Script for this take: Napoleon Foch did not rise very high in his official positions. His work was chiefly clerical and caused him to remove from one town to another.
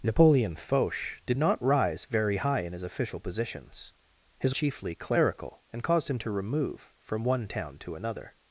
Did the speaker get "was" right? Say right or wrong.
wrong